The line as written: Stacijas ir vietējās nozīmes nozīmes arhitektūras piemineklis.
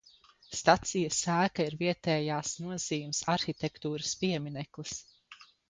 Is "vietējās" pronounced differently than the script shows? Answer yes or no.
no